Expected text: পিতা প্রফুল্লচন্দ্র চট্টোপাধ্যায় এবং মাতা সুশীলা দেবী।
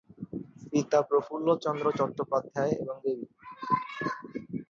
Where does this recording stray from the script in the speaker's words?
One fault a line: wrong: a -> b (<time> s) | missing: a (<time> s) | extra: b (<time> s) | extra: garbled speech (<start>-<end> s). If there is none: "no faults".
missing: মাতা সুশীলা (3.0 s)